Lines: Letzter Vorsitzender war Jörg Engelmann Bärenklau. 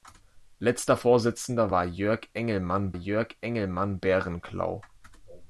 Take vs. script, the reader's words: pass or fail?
fail